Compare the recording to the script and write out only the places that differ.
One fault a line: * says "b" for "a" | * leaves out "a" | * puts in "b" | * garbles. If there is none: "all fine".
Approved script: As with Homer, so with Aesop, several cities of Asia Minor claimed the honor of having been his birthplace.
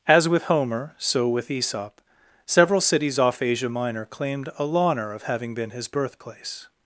* says "off" for "of"
* says "a" for "the"